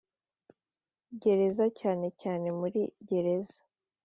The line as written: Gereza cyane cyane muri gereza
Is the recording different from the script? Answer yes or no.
no